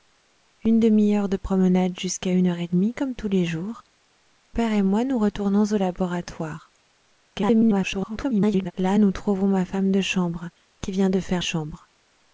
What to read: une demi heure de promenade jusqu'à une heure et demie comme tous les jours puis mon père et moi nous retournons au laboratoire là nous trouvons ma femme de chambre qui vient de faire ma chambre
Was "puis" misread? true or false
true